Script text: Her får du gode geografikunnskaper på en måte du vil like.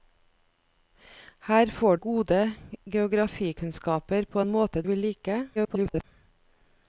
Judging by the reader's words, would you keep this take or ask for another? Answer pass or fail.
fail